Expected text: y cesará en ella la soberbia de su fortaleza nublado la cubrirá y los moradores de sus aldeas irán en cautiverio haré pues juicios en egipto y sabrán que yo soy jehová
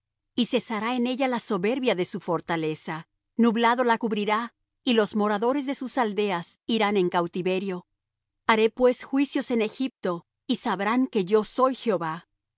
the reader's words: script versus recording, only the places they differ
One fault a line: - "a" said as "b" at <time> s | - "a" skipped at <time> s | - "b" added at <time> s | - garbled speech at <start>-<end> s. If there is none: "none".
none